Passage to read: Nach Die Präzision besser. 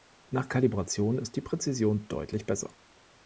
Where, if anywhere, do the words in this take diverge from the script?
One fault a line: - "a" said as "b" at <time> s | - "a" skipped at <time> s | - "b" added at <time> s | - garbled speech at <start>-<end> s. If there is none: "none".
- "Kalibration ist" added at 0.5 s
- "deutlich" added at 2.1 s